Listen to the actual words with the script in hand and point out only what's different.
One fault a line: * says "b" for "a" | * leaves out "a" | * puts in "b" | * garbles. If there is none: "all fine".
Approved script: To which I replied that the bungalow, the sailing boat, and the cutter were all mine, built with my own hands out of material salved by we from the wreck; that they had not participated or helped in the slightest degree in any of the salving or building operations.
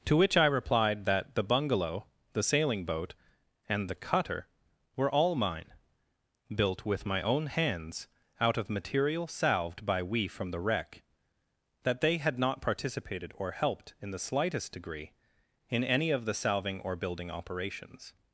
all fine